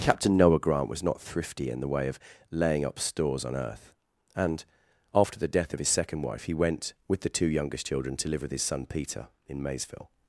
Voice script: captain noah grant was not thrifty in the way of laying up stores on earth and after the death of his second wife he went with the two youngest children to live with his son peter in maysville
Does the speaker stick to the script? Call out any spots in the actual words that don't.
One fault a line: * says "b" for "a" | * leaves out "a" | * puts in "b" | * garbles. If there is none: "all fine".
all fine